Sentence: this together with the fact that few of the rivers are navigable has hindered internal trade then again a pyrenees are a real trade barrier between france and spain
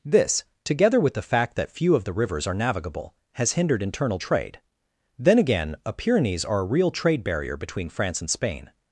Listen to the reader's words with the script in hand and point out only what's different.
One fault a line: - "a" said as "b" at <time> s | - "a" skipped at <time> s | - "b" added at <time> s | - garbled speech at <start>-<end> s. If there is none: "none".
none